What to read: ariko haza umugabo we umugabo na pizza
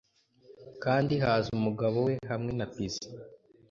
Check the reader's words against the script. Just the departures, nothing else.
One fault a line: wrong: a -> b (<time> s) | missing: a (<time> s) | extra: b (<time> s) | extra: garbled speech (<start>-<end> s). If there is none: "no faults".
wrong: ariko -> kandi (0.8 s)
wrong: umugabo -> hamwe (2.3 s)